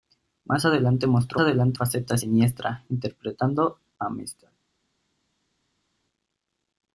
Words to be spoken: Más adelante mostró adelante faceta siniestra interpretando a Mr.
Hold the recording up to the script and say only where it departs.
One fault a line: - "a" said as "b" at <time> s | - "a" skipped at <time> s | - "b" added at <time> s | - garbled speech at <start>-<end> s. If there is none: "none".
none